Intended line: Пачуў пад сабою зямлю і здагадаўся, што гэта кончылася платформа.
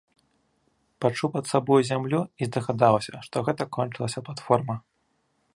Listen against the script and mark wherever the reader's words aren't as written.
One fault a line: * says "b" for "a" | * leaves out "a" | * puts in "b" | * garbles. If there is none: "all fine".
all fine